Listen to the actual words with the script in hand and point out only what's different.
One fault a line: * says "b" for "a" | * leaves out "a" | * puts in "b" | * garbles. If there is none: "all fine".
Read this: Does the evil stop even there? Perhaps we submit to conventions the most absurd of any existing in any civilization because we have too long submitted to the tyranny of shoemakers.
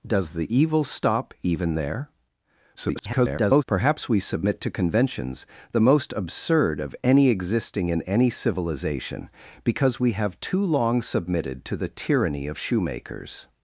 * garbles